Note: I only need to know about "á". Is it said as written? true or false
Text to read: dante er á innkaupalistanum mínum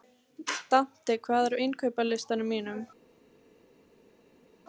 true